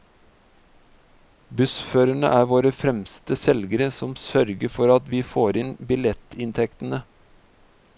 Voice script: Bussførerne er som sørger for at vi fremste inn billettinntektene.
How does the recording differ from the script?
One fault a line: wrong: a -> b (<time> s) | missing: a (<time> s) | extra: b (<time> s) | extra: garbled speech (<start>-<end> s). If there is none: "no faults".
extra: våre fremste selgere (2.5 s)
wrong: fremste -> får (5.4 s)